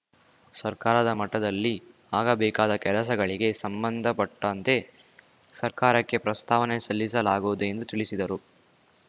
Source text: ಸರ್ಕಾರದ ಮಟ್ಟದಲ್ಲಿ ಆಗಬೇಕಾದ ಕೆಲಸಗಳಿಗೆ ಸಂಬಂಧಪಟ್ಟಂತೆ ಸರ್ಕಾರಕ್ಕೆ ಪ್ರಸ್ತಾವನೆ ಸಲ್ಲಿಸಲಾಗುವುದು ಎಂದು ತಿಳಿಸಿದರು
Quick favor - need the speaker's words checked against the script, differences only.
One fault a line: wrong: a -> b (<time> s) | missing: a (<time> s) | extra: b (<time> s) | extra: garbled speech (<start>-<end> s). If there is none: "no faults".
no faults